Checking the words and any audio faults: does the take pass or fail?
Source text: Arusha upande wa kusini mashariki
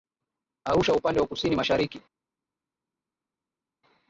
pass